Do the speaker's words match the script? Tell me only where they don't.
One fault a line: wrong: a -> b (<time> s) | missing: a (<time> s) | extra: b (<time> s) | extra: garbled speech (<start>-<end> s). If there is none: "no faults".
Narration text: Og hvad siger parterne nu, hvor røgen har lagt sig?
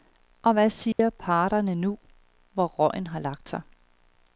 no faults